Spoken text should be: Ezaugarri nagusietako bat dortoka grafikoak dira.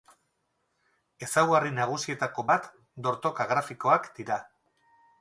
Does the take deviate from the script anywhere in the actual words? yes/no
no